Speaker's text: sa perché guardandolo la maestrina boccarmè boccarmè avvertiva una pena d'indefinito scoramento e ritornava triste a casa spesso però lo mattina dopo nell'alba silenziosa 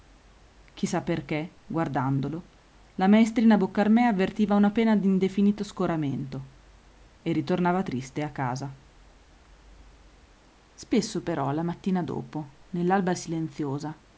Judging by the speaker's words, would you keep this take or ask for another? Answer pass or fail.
fail